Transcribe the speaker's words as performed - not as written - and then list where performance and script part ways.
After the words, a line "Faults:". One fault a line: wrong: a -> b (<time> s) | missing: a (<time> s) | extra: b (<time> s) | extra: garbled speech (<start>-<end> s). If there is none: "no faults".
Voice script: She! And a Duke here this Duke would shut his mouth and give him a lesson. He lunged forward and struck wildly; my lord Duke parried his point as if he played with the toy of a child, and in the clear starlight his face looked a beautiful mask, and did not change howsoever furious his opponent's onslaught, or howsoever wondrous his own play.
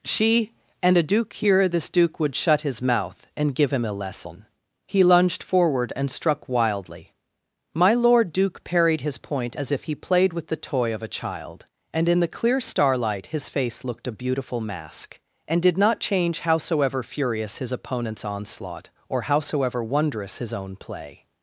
She! And a Duke here this Duke would shut his mouth and give him a lesson. He lunged forward and struck wildly; my lord Duke parried his point as if he played with the toy of a child, and in the clear starlight his face looked a beautiful mask, and did not change howsoever furious his opponent's onslaught, or howsoever wondrous his own play.
Faults:
no faults